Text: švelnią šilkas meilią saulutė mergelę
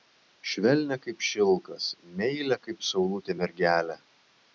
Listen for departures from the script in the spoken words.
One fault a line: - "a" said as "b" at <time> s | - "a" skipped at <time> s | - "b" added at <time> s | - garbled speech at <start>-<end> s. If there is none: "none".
- "kaip" added at 1.0 s
- "kaip" added at 2.7 s